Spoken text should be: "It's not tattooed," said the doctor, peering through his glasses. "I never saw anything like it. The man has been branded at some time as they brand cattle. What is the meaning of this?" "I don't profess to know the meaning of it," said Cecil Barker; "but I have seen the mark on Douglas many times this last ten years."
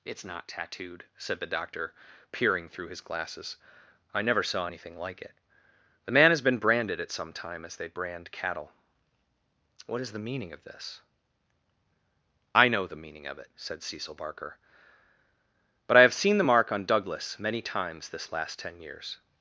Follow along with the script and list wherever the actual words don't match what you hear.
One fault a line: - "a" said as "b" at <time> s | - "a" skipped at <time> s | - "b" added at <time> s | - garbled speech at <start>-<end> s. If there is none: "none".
- "don't profess to" skipped at 12.7 s